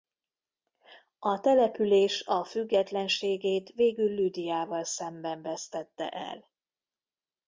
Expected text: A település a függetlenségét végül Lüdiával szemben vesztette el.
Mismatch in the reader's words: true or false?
false